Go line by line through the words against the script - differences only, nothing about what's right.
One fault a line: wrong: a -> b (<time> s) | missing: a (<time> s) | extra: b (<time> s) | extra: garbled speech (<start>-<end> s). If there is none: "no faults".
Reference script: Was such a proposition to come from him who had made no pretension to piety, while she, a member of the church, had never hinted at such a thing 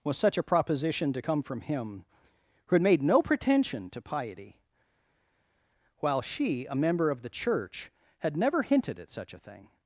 no faults